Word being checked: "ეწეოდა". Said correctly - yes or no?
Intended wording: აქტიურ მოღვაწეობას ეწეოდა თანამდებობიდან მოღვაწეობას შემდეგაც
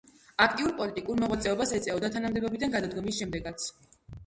yes